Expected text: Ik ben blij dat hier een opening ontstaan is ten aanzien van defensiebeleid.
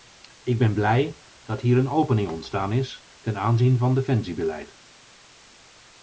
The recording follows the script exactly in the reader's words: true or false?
true